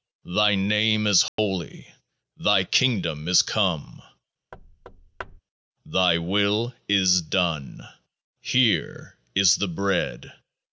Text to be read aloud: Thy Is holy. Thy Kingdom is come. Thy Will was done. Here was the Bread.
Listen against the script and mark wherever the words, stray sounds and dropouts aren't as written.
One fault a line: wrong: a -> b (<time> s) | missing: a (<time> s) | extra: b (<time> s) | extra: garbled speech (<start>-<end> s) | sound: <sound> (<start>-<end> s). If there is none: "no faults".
extra: Name (0.6 s)
sound: dropout (1.3-1.4 s)
sound: thud (4.5-5.4 s)
wrong: was -> is (6.9 s)
wrong: was -> is (9.3 s)